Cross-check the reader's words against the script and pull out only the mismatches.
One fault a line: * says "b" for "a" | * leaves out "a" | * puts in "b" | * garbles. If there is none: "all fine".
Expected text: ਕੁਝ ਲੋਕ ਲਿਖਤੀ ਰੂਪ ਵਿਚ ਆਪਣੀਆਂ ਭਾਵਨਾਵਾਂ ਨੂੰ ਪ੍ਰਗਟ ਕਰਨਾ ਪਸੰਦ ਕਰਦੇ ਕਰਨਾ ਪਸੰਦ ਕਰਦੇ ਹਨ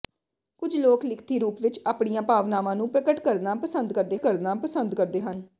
all fine